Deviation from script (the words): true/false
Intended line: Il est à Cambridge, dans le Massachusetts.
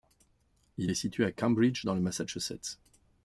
true